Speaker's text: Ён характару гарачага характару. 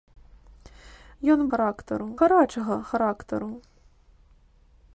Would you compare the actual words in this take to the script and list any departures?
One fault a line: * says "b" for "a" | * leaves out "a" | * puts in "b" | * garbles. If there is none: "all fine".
all fine